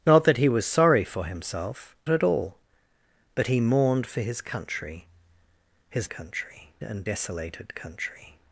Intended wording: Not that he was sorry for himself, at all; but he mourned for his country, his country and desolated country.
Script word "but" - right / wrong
right